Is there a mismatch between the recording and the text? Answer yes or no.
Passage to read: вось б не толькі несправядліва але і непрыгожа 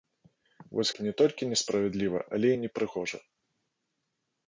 no